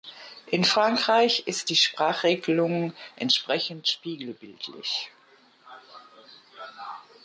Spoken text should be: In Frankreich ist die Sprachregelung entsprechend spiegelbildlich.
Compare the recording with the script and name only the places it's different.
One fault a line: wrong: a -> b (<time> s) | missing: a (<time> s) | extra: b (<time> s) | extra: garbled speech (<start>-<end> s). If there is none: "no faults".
no faults